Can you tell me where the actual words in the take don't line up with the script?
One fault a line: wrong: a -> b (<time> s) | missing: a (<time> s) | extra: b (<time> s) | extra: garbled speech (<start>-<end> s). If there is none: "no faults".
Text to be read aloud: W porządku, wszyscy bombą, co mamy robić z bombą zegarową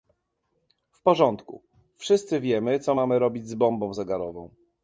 wrong: bombą -> wiemy (2.4 s)